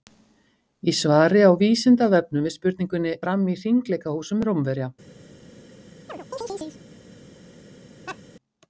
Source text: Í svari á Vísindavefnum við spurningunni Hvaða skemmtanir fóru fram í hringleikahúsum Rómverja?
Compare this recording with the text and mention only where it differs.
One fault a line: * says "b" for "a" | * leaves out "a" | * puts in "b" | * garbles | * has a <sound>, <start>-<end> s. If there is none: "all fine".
* leaves out "Hvaða skemmtanir fóru"
* has a chirp, 6.1-6.8 s
* has a laugh, 8.1-8.2 s